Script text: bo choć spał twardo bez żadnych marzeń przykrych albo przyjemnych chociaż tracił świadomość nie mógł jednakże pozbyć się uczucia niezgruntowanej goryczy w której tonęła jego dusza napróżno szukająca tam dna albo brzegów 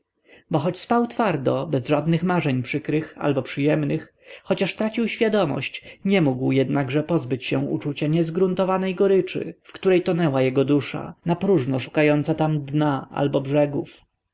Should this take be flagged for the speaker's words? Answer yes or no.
no